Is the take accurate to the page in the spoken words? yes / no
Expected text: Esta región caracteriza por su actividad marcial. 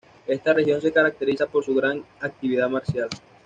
no